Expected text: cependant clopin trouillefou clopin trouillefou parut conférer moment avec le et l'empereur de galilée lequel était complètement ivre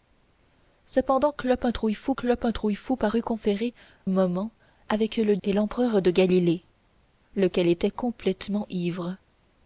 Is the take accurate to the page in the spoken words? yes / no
yes